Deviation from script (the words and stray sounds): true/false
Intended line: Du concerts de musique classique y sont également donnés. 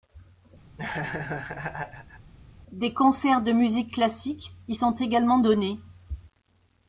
true